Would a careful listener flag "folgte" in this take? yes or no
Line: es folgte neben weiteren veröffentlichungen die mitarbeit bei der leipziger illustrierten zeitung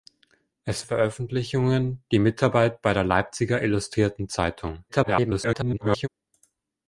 yes